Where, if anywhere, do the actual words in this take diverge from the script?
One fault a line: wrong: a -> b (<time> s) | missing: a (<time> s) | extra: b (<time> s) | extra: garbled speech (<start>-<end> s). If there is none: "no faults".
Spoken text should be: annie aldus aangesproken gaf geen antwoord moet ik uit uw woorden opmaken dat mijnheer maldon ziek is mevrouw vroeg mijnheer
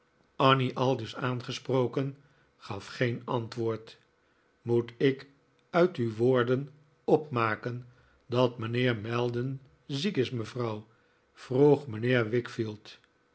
no faults